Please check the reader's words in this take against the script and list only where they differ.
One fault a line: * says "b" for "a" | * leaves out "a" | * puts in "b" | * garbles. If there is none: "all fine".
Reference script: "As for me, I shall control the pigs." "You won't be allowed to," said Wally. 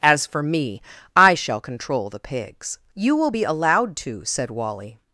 * says "will" for "won't"